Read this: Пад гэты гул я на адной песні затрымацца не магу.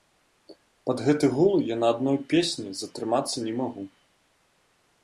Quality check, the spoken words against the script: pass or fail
pass